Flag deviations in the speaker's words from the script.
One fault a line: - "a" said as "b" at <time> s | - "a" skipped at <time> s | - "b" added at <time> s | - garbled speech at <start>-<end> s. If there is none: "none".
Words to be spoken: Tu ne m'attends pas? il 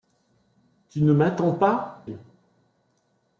none